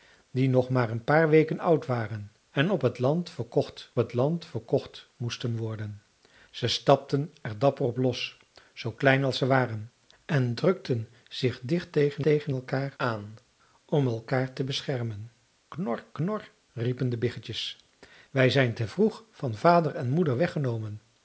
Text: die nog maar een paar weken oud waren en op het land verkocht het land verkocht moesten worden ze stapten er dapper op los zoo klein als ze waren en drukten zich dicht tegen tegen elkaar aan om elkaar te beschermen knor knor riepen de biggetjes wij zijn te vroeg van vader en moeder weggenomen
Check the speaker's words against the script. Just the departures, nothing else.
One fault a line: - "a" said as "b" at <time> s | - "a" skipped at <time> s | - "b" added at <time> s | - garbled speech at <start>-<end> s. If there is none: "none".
none